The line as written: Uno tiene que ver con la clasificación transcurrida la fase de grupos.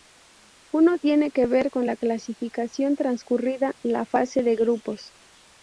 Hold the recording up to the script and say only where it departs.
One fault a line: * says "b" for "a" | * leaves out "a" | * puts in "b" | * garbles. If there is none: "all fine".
all fine